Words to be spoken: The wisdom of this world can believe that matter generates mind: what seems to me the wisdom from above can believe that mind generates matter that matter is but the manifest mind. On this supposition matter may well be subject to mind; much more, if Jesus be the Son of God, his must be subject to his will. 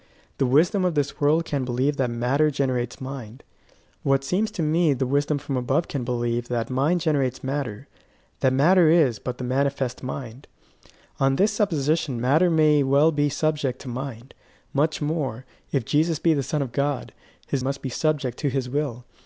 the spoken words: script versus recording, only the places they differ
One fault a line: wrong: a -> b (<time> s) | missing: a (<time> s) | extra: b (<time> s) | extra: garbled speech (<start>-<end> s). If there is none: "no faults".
no faults